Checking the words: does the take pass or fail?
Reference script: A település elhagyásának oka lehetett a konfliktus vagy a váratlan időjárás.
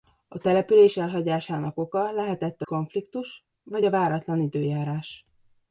pass